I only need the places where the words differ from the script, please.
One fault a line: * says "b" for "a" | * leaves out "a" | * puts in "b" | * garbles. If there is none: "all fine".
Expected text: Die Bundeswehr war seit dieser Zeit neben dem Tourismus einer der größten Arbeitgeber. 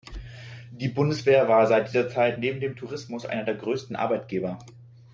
all fine